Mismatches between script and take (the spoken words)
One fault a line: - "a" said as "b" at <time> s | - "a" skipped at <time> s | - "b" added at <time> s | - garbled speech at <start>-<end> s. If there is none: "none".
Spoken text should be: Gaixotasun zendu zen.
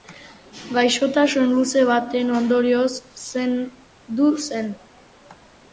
- "luze baten ondorioz" added at 1.6 s